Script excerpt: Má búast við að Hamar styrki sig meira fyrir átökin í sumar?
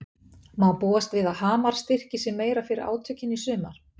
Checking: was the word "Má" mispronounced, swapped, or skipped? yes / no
no